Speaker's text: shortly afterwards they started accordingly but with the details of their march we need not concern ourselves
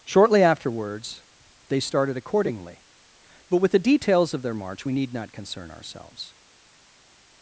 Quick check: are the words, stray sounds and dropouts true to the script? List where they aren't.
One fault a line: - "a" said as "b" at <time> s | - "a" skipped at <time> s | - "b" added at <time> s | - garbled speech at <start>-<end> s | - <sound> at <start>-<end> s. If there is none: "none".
none